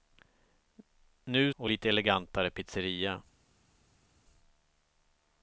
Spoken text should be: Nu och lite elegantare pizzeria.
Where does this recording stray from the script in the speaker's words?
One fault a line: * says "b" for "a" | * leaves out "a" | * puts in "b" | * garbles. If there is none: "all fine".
all fine